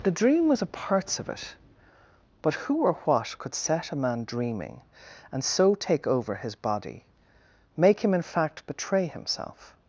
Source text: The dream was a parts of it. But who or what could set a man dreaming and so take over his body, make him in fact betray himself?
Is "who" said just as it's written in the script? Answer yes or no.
yes